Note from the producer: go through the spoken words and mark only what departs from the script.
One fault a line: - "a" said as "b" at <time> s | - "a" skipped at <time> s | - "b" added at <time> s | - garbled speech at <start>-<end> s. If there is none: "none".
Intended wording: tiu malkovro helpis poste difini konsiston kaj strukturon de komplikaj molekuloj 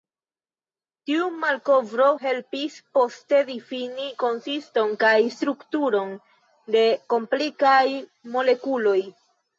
none